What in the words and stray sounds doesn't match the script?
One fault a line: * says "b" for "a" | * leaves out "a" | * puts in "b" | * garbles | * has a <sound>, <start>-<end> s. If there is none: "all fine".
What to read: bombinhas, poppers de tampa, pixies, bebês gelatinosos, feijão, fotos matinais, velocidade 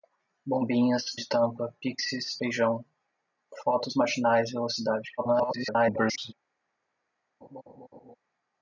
* leaves out "poppers"
* leaves out "bebês gelatinosos"
* garbles
* has a laugh, 7.4-8.2 s